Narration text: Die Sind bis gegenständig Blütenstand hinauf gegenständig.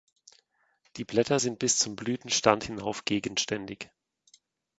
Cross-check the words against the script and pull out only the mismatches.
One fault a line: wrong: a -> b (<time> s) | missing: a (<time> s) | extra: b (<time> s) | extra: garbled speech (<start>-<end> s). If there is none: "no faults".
extra: Blätter (1.1 s)
wrong: gegenständig -> zum (1.8 s)